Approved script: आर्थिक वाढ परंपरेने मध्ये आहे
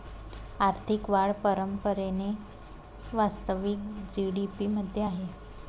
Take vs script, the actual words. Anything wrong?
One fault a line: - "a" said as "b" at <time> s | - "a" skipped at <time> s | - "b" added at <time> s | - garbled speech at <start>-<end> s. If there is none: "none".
- "वास्तविक जी.डी.पी" added at 3.1 s